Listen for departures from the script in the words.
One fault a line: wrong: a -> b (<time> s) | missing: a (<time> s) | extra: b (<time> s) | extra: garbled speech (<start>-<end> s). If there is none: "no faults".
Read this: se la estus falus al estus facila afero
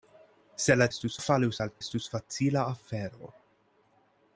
no faults